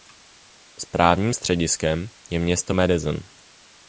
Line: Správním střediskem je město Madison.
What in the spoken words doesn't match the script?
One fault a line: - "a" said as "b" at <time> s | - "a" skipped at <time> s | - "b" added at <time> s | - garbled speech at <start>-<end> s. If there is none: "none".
none